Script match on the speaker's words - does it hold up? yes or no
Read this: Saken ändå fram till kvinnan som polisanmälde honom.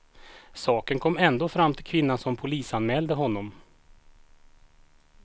no